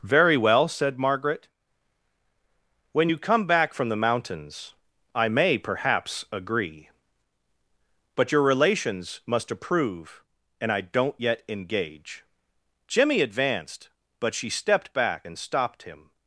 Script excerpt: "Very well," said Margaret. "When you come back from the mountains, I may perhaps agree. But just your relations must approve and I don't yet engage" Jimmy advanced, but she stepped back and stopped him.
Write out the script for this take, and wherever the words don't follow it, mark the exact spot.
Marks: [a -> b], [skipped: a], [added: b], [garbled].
"Very well," said Margaret. "When you come back from the mountains, I may perhaps agree. But [skipped: just] your relations must approve and I don't yet engage" Jimmy advanced, but she stepped back and stopped him.